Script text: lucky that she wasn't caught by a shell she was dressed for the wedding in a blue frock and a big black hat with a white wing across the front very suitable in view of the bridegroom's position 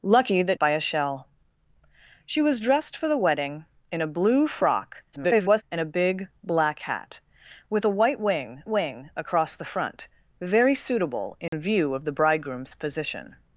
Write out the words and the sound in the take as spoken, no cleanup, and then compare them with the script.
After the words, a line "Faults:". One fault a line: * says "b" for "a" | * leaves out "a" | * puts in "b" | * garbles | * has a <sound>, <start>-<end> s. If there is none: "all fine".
lucky that by a shell she was dressed for the wedding in a blue frock [garbled] and a big black hat with a white wing wing across the front very suitable in view of the bridegroom's position
Faults:
* leaves out "she wasn't caught"
* garbles
* puts in "wing"
* has a dropout, 11.5-11.5 s